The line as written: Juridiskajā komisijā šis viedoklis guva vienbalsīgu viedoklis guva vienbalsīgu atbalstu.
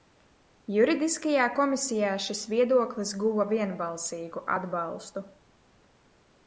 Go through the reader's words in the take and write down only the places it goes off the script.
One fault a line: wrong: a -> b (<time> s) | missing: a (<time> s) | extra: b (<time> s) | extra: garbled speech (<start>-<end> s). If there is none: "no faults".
missing: viedoklis guva vienbalsīgu (4.5 s)